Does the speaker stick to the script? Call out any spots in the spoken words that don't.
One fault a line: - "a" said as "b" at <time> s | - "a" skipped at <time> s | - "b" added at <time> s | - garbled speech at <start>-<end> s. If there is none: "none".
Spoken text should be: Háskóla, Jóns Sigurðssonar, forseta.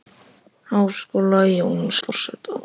- "Sigurðssonar" skipped at 1.9 s